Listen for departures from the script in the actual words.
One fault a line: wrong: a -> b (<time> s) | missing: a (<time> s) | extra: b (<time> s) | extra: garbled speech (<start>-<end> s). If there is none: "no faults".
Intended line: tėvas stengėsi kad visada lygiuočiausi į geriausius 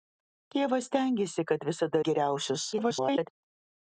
missing: lygiuočiausi (2.0 s)
extra: garbled speech (2.7-3.3 s)